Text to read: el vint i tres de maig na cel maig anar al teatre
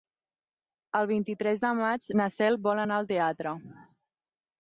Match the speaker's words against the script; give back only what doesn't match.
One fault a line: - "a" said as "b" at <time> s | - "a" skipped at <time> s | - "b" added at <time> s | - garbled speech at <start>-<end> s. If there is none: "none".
- "maig" said as "vol" at 2.7 s